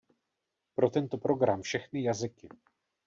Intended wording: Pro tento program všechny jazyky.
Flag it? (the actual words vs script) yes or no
no